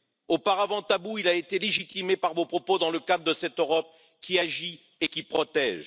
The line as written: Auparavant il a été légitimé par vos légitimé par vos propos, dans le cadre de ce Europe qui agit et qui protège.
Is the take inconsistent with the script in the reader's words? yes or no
yes